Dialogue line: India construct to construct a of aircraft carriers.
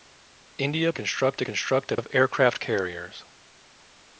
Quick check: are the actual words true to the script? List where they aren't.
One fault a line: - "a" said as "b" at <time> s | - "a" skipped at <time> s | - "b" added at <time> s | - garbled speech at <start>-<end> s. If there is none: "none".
none